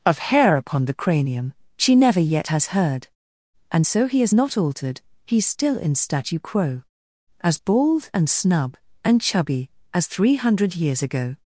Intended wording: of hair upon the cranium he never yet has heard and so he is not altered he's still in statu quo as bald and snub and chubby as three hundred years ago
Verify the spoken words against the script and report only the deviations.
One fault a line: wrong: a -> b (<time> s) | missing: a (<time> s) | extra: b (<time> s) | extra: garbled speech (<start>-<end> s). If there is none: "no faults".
wrong: he -> she (1.8 s)